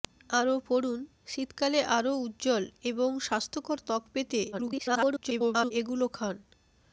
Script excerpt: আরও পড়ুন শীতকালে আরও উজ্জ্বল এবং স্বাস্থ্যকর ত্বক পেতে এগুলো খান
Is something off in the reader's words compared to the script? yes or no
yes